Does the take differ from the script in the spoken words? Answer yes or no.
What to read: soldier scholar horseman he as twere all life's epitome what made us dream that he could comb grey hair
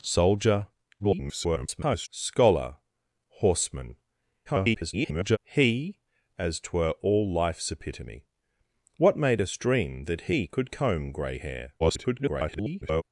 yes